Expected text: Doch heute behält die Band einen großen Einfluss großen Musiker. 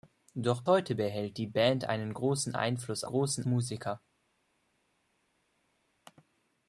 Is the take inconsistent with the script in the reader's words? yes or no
no